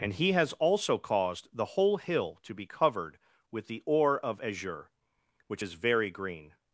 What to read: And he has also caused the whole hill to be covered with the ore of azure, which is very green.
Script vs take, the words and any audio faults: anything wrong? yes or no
no